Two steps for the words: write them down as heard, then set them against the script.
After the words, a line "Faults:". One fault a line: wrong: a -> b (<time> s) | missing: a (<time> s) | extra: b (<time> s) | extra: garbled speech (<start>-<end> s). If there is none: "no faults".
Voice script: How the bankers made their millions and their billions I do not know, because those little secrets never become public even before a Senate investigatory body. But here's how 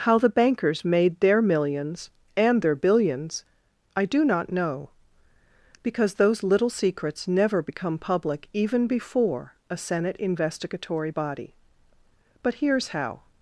How the bankers made their millions and their billions I do not know, because those little secrets never become public even before a Senate investigatory body. But here's how
Faults:
no faults